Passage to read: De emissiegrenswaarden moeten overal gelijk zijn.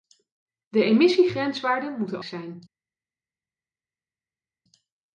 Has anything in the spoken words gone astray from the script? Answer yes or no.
yes